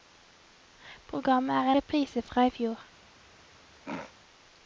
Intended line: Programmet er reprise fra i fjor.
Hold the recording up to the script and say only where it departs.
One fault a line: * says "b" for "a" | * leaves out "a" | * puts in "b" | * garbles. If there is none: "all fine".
all fine